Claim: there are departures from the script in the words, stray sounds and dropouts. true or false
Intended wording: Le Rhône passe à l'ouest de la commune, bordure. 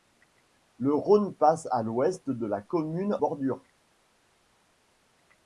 false